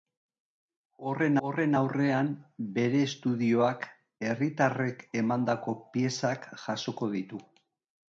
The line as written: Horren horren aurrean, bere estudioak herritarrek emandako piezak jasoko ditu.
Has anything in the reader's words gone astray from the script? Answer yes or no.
no